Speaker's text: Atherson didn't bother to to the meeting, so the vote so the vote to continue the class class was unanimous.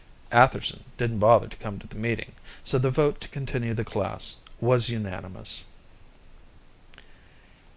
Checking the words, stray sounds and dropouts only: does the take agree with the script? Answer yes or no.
no